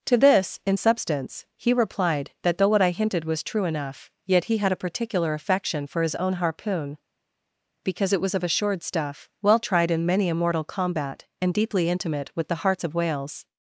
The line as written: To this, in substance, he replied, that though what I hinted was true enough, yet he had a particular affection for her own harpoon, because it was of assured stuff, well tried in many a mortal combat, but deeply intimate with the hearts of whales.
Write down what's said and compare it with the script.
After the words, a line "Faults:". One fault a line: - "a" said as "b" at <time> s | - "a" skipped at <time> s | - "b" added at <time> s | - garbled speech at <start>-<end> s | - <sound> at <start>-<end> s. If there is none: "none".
To this, in substance, he replied, that though what I hinted was true enough, yet he had a particular affection for his own harpoon, because it was of assured stuff, well tried in many a mortal combat, and deeply intimate with the hearts of whales.
Faults:
- "her" said as "his" at 6.0 s
- "but" said as "and" at 11.4 s